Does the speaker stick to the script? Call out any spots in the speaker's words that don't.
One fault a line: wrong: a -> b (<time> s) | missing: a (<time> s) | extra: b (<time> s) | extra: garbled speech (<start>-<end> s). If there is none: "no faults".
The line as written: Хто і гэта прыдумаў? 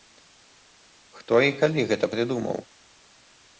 extra: калі (1.6 s)